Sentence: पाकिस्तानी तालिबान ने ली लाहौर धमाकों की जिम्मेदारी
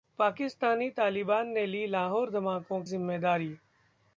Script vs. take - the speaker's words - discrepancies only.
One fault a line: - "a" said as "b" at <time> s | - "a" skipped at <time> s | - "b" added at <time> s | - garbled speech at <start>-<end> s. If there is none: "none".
- "की" skipped at 2.8 s